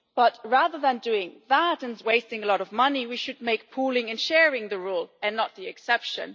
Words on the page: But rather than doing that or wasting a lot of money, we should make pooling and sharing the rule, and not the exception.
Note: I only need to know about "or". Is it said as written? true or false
false